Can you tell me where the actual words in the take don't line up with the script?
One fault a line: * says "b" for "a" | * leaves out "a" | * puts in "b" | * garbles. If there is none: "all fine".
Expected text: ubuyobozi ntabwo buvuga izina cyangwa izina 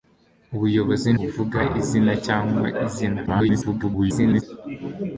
* leaves out "ntabwo"
* garbles